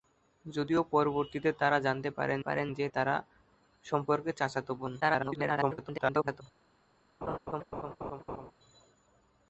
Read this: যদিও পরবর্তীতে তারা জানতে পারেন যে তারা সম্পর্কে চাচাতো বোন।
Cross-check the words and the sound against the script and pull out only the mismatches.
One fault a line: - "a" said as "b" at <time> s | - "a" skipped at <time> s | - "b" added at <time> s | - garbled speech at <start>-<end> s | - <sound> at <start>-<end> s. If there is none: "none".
- "পারেন" added at 2.4 s
- garbled speech at 5.0-6.4 s
- laugh at 7.2-8.5 s